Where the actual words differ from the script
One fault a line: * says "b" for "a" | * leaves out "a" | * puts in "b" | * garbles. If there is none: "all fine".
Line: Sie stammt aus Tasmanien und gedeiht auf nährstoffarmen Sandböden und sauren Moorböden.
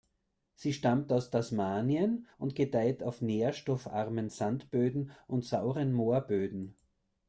all fine